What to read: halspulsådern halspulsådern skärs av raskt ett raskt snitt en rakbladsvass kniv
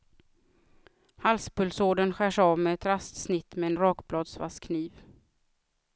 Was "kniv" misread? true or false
false